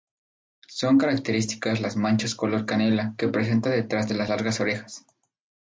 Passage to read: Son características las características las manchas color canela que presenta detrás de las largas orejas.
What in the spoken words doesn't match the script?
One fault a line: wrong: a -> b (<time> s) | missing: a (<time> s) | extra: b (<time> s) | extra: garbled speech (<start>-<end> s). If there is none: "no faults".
missing: características las (1.9 s)